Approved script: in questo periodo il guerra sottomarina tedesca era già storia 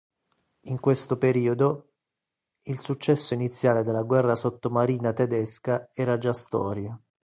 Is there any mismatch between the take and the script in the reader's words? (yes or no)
yes